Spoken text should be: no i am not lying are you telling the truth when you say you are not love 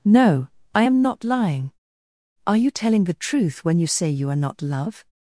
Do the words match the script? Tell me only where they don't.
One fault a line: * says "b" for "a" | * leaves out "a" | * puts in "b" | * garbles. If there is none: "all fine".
all fine